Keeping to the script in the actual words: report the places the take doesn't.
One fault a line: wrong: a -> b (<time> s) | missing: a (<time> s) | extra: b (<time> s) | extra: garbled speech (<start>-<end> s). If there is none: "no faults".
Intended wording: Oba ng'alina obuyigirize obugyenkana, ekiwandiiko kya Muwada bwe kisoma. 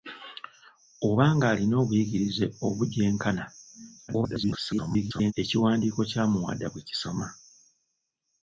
extra: garbled speech (4.1-5.3 s)